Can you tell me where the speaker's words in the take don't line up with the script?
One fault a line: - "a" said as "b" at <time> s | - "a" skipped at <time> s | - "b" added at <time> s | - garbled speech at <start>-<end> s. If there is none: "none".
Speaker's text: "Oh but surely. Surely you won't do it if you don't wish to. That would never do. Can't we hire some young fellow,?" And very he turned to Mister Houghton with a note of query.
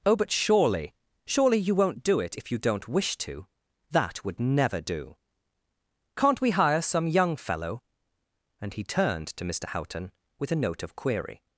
- "very" skipped at 8.7 s